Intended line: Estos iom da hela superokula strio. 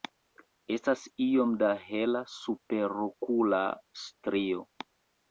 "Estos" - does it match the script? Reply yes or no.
no